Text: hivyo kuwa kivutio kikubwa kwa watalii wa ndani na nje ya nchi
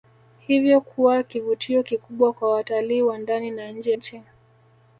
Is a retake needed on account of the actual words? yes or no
yes